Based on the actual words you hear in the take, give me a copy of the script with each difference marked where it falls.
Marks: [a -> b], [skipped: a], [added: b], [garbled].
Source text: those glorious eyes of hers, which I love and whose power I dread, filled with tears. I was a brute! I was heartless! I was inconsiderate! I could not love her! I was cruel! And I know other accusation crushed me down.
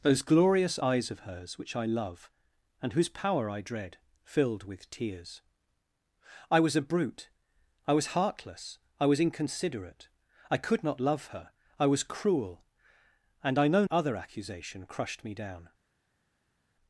those glorious eyes of hers, which I love and whose power I dread, filled with tears. I was a brute! I was heartless! I was inconsiderate! I could not love her! I was cruel! And I know other accusation crushed me down.